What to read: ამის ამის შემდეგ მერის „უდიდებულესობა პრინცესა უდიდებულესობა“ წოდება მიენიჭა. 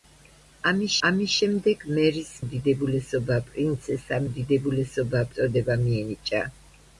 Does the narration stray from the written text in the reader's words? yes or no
no